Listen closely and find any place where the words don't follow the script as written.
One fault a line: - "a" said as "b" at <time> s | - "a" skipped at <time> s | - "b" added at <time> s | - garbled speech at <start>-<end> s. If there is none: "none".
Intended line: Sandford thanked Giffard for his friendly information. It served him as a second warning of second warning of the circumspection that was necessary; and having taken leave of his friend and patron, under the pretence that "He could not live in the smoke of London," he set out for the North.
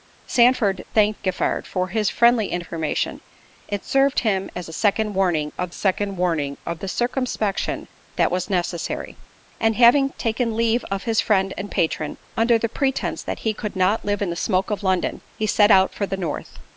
none